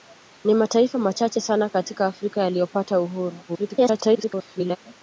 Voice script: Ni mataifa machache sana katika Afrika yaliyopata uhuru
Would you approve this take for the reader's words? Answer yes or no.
no